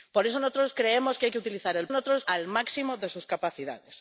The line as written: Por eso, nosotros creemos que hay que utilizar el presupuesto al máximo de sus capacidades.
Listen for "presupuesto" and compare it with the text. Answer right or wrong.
wrong